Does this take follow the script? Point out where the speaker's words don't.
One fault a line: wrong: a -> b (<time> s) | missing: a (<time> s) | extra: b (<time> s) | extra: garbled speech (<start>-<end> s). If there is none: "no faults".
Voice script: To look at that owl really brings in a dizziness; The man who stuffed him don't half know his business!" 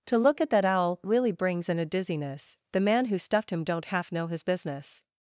no faults